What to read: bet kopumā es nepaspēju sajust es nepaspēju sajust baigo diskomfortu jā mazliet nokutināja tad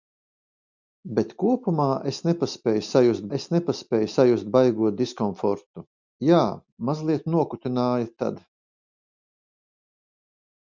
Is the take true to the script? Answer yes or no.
yes